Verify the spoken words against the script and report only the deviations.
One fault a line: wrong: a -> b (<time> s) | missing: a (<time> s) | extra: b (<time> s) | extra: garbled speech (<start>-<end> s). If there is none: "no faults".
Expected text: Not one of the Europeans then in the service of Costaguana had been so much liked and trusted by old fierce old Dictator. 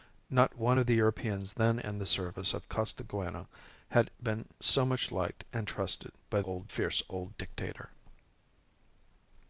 no faults